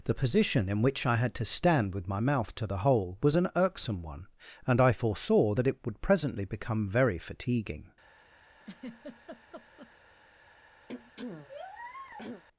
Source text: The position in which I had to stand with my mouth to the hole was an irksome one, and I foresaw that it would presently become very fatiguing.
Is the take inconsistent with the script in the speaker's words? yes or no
no